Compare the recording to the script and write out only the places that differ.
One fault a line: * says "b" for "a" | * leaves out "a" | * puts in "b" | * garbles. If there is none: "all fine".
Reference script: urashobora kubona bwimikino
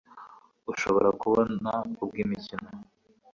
all fine